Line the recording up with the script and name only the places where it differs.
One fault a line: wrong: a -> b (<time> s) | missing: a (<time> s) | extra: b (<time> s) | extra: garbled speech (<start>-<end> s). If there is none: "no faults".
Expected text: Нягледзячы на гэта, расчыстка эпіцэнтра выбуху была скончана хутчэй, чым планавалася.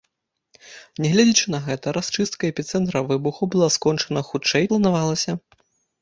missing: чым (4.7 s)